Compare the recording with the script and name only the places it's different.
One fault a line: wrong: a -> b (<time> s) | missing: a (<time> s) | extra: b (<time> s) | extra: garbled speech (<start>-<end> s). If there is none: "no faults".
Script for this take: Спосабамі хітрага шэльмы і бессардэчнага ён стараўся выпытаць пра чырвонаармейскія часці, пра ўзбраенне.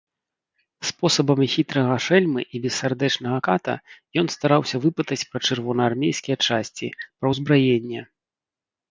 extra: ката (3.5 s)